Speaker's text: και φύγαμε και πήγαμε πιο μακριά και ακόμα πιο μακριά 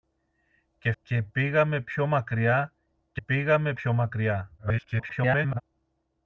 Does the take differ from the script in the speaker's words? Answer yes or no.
yes